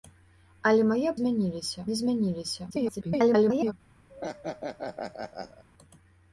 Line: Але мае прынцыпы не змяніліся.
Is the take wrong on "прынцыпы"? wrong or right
wrong